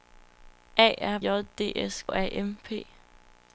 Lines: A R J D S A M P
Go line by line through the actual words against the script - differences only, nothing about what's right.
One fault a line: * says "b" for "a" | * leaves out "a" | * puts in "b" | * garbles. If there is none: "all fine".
all fine